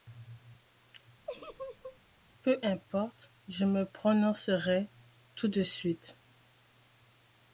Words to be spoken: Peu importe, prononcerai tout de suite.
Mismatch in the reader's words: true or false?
true